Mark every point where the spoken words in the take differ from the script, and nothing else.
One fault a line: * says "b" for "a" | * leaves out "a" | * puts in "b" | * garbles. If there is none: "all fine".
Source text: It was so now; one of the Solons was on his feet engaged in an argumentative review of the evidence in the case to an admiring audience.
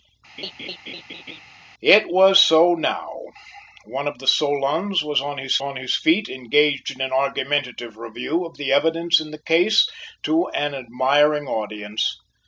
* puts in "on his"